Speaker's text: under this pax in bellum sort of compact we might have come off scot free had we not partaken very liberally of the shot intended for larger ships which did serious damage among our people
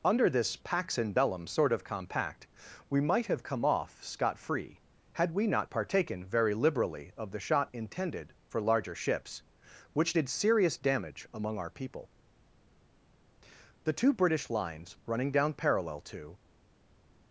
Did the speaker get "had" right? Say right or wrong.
right